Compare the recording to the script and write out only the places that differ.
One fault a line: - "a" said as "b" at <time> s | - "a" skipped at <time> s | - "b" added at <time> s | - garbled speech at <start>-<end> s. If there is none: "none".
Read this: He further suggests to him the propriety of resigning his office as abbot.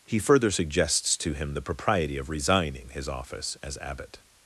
none